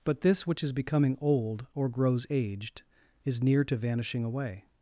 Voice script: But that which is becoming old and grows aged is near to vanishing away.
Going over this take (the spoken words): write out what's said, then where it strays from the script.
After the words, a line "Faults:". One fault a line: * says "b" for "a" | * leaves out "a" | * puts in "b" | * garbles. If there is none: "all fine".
But this which is becoming old or grows aged is near to vanishing away.
Faults:
* says "this" for "that"
* says "or" for "and"